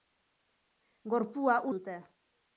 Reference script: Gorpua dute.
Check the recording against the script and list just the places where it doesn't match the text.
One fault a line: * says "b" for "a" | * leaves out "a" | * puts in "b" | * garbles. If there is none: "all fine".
all fine